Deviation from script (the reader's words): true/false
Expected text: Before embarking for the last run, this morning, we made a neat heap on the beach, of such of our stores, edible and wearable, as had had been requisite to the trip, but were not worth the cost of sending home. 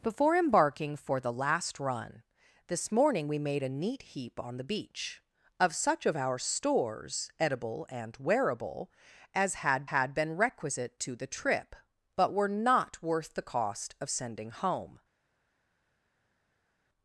false